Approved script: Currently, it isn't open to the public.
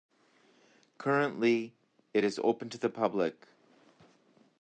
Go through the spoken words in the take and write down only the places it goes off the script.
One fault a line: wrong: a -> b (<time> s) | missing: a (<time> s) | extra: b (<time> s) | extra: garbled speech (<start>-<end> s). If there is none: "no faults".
wrong: isn't -> is (2.2 s)